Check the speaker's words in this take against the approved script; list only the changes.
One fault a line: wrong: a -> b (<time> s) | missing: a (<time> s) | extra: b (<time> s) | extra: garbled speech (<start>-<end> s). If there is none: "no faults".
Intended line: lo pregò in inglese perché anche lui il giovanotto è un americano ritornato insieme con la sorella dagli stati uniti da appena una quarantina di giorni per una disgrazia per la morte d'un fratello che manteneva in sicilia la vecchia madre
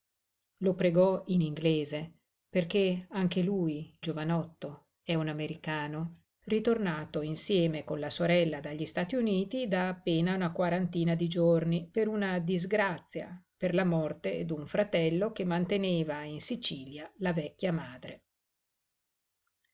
missing: il (4.0 s)